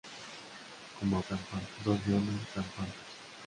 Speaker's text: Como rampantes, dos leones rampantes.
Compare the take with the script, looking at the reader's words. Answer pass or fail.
pass